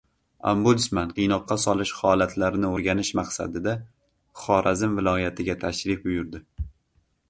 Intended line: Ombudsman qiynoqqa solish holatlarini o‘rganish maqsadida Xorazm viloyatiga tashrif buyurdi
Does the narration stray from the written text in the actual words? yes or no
no